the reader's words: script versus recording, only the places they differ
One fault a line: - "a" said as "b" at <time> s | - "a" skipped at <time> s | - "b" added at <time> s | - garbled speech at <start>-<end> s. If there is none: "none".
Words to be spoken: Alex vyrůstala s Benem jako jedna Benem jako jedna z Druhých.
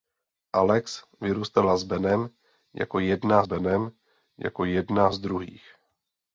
none